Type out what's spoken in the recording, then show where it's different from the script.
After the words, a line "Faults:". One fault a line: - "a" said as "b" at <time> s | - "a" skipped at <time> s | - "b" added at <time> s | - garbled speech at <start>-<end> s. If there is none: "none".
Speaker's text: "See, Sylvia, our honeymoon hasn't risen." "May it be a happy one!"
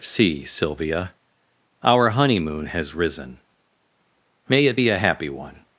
"See, Sylvia, our honeymoon has risen." "May it be a happy one!"
Faults:
- "hasn't" said as "has" at 2.7 s